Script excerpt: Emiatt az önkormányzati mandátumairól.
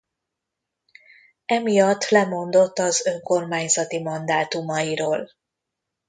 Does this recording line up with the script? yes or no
no